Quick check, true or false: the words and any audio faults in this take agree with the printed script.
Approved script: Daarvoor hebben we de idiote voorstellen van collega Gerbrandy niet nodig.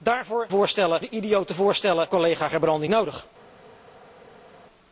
false